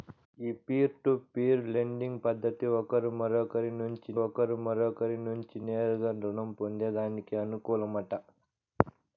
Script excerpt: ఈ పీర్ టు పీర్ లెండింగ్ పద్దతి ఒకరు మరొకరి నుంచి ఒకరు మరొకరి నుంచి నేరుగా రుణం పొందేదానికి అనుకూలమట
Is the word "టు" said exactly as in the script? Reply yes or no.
yes